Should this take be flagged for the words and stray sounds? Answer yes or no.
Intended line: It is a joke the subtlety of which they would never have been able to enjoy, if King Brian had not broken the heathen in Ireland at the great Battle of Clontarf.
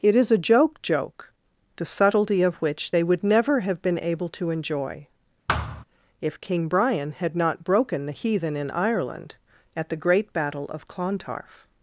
yes